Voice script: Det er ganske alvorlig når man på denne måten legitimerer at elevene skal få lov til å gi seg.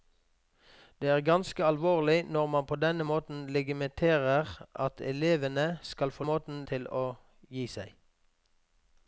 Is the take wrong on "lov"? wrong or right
wrong